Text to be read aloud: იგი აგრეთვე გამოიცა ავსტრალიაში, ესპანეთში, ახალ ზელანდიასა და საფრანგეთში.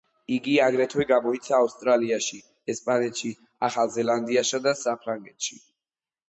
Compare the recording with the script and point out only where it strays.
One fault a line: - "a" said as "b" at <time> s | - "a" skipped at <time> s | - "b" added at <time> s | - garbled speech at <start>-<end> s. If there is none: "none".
none